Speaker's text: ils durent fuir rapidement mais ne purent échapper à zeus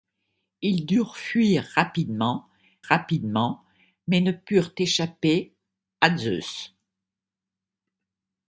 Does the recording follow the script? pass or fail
fail